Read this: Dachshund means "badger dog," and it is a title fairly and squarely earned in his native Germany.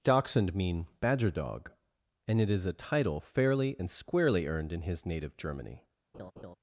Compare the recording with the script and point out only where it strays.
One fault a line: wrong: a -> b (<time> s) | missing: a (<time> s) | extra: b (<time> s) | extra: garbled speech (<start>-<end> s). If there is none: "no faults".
wrong: means -> mean (0.6 s)